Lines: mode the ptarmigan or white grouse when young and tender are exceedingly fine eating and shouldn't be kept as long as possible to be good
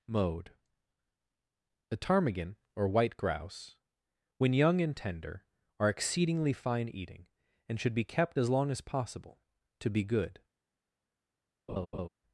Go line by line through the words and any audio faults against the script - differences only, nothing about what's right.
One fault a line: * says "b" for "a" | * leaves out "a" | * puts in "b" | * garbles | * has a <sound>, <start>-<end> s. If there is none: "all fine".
* says "should" for "shouldn't"
* has a laugh, 11.7-12.1 s